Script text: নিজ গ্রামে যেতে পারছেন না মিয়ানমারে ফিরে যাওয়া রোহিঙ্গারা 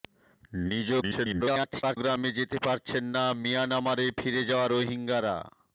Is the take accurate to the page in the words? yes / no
no